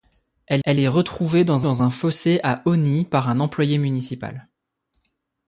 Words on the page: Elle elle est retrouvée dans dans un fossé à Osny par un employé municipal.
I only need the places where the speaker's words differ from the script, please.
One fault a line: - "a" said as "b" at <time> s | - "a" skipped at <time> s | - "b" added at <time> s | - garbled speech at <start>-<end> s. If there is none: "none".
none